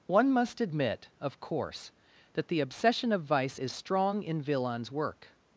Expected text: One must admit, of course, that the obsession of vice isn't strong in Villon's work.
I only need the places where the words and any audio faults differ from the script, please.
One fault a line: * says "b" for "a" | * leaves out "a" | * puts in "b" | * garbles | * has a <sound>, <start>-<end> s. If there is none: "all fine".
* says "is" for "isn't"